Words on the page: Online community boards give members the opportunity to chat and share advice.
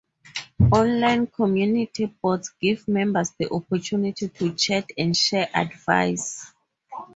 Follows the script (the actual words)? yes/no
yes